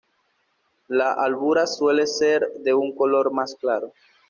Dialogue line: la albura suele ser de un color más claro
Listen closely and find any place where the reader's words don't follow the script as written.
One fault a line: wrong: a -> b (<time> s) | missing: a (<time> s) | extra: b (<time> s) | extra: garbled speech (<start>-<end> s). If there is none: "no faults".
no faults